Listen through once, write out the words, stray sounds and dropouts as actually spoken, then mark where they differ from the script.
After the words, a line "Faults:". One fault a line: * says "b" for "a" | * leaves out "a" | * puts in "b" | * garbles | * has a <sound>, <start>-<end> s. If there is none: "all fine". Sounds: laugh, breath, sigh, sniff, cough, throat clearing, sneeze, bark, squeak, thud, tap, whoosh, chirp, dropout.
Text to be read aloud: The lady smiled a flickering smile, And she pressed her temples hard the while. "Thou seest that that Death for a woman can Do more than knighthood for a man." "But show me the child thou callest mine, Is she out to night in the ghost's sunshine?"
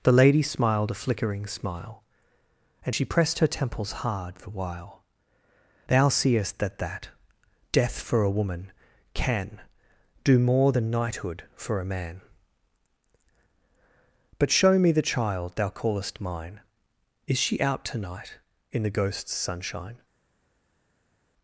The lady smiled a flickering smile, And she pressed her temples hard the while. "Thou seest that that Death for a woman can Do more than knighthood for a man." "But show me the child thou callest mine, Is she out to night in the ghost's sunshine?"
Faults:
all fine